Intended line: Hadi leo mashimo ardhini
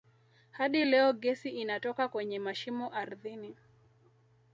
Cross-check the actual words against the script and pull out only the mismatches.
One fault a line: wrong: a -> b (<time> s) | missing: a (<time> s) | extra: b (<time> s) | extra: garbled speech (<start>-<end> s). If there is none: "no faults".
extra: gesi inatoka kwenye (1.1 s)